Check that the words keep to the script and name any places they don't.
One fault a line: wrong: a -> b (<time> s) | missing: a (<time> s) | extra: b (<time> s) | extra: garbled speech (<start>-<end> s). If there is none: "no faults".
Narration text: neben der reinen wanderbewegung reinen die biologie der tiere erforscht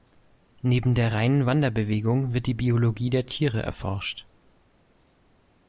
wrong: reinen -> wird (2.3 s)